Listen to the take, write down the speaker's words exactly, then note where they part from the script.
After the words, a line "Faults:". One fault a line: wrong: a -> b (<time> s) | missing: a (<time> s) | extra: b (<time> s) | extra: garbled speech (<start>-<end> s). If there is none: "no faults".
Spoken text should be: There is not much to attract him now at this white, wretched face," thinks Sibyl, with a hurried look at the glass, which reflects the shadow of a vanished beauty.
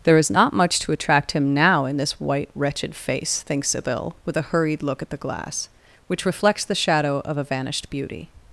There is not much to attract him now in this white, wretched face," thinks Sibyl, with a hurried look at the glass, which reflects the shadow of a vanished beauty.
Faults:
wrong: at -> in (1.9 s)